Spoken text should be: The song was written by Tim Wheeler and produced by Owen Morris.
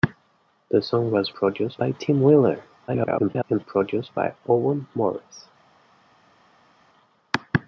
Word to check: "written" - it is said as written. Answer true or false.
false